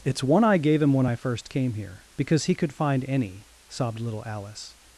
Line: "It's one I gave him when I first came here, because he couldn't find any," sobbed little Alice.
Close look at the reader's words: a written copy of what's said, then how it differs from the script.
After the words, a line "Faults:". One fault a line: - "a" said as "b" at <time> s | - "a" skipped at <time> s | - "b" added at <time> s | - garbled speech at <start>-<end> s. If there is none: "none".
"It's one I gave him when I first came here, because he could find any," sobbed little Alice.
Faults:
- "couldn't" said as "could" at 2.5 s